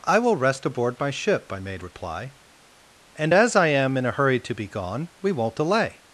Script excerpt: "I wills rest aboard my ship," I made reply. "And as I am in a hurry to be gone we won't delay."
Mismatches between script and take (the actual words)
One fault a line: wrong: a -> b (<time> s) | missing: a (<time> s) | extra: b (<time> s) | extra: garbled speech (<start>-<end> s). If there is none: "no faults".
wrong: wills -> will (0.2 s)